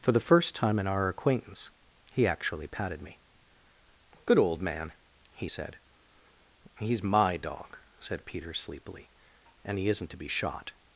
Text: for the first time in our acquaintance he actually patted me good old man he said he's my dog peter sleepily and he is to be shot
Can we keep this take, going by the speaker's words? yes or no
no